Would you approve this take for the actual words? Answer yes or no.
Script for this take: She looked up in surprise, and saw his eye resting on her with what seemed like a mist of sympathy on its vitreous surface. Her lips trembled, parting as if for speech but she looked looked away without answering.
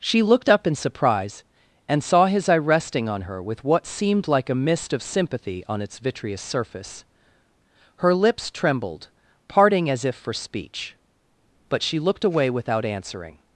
no